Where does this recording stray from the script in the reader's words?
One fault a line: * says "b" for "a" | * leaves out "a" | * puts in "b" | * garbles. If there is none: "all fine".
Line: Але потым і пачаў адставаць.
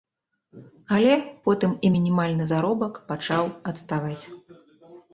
* puts in "мінімальны заробак"